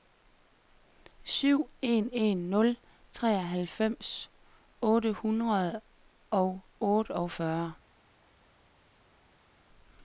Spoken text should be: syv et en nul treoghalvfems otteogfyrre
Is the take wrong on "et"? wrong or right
wrong